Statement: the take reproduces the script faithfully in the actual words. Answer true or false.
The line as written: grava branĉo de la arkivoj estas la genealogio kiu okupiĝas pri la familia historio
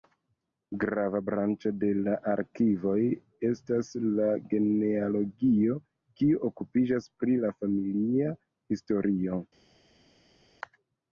true